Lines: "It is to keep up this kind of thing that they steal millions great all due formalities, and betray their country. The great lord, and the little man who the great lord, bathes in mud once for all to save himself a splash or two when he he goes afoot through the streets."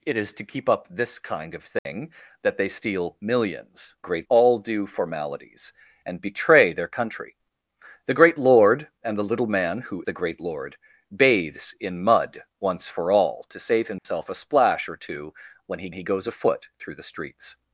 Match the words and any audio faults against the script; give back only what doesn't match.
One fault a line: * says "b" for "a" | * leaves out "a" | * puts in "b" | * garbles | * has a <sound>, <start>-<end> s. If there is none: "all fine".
* has a dropout, 1.8-1.9 s
* has a dropout, 14.0-14.1 s